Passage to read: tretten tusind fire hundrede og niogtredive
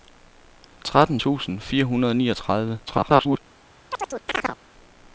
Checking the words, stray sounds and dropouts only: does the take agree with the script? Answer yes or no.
no